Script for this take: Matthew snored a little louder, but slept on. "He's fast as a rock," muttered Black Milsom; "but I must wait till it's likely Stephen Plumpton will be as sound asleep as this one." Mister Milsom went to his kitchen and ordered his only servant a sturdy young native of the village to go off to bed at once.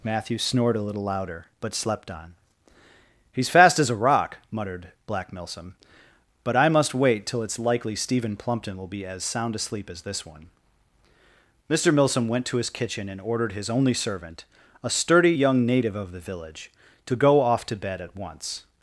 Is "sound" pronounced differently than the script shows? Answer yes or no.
no